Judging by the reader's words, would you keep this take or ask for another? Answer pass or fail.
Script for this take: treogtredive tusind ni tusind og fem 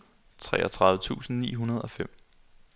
fail